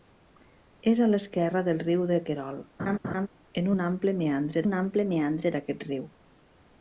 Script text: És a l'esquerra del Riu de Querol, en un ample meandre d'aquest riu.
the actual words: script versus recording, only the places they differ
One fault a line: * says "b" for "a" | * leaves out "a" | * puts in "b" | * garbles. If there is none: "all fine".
* puts in "un ample meandre"